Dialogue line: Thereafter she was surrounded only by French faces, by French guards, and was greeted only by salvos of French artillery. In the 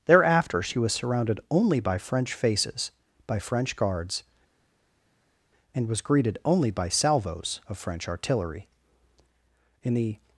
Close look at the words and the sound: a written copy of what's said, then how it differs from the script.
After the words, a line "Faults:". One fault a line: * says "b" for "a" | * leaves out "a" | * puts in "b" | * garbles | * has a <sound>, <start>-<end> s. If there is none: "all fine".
Thereafter she was surrounded only by French faces, by French guards, and was greeted only by salvos of French artillery. In the
Faults:
all fine